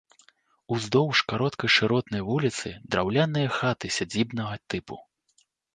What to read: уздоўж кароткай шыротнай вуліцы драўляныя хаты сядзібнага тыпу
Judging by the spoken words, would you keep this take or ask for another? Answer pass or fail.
pass